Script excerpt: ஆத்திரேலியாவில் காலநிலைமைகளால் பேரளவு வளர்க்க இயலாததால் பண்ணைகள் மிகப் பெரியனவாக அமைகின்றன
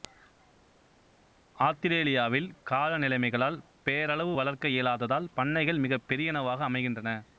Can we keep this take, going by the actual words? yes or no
yes